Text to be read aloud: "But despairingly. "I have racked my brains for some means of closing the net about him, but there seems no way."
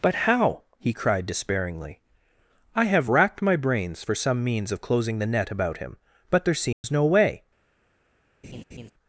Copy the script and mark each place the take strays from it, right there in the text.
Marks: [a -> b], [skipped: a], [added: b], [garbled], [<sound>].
"But [added: how he cried] despairingly. "I have racked my brains for some means of closing the net about him, but there seems [dropout] no way." [laugh]